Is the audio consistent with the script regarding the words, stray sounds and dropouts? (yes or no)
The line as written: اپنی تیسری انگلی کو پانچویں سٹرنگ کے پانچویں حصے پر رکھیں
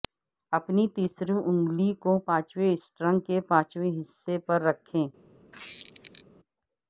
no